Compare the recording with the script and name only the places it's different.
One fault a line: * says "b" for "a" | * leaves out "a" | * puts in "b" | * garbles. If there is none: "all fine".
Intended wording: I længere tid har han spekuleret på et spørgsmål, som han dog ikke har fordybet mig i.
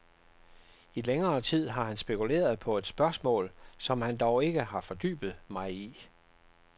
all fine